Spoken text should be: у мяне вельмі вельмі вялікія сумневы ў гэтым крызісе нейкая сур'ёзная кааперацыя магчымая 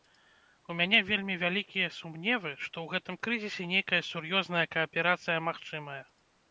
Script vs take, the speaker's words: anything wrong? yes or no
yes